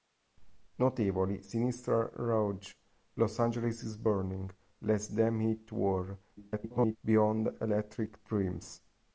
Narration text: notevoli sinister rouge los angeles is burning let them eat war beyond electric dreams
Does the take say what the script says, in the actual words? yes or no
no